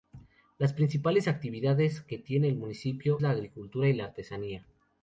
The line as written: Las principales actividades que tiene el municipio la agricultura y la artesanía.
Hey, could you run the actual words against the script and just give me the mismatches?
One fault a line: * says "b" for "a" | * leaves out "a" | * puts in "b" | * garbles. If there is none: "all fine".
all fine